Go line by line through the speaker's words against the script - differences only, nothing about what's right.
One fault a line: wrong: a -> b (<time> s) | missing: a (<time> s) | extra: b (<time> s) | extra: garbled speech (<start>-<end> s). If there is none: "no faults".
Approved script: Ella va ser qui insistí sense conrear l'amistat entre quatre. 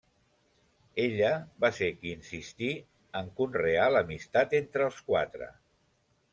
wrong: sense -> en (3.2 s)
extra: els (4.9 s)